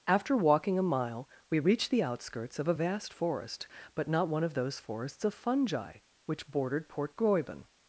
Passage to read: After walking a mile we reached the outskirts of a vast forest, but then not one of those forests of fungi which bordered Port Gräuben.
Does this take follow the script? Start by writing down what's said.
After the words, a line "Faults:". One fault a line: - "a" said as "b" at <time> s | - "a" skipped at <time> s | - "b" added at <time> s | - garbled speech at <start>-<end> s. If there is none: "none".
After walking a mile we reached the outskirts of a vast forest, but not one of those forests of fungi which bordered Port Gräuben.
Faults:
- "then" skipped at 4.1 s